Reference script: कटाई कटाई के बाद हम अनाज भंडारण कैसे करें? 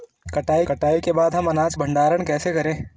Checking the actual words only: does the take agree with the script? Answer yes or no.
yes